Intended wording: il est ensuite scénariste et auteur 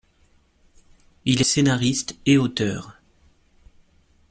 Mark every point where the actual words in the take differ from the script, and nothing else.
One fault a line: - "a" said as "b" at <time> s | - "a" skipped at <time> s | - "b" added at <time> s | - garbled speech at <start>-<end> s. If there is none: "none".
- "est ensuite" skipped at 1.4 s